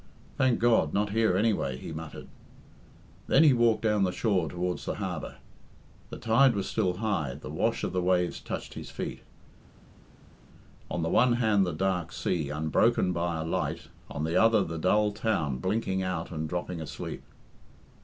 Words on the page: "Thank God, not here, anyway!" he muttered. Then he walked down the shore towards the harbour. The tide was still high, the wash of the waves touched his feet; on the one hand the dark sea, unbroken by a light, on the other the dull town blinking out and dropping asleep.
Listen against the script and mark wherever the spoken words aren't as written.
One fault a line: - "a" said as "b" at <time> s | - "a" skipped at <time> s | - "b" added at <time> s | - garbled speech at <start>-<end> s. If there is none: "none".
none